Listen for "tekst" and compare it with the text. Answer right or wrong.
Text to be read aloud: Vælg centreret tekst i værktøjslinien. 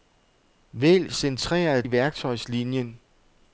wrong